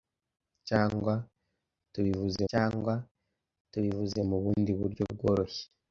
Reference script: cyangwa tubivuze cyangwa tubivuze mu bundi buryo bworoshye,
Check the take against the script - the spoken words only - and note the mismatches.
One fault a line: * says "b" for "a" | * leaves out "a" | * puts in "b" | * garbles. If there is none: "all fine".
all fine